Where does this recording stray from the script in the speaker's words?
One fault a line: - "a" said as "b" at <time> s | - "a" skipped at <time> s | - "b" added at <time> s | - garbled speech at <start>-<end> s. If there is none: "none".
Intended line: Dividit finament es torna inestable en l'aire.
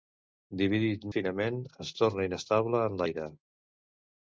none